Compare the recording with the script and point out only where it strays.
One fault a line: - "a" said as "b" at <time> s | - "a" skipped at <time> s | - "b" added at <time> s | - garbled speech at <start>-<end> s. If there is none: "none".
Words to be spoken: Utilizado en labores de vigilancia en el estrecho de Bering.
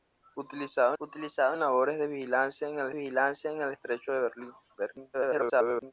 - "utilizado" added at 1.0 s
- "vigilancia en el" added at 2.9 s
- garbled speech at 5.1-5.9 s